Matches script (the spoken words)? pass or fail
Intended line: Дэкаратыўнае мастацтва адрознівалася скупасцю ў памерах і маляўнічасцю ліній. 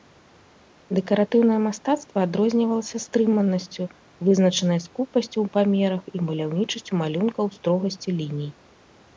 fail